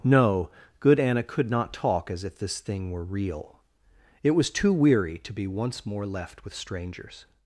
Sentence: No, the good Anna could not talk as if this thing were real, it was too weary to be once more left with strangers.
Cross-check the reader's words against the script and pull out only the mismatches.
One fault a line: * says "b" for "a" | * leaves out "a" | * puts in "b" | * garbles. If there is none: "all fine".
* leaves out "the"